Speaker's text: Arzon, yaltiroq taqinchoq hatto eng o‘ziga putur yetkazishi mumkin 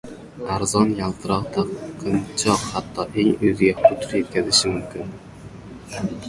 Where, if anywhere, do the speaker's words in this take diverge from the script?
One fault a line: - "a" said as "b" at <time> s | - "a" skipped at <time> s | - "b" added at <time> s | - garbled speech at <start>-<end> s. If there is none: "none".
none